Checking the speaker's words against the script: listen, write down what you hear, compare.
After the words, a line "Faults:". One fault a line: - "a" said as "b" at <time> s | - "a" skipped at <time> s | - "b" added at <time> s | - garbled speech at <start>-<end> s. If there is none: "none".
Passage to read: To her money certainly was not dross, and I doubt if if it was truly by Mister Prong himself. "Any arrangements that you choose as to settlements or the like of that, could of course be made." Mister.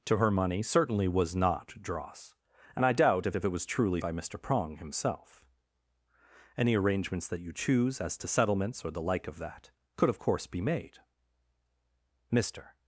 To her money certainly was not dross, and I doubt if if it was truly by Mister Prong himself. "Any arrangements that you choose as to settlements or the like of that, could of course be made." Mister.
Faults:
none